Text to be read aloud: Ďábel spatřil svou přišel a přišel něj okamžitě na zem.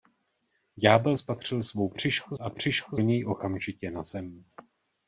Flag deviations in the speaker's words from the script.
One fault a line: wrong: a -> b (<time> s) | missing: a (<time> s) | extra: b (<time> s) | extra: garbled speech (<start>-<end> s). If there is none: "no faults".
no faults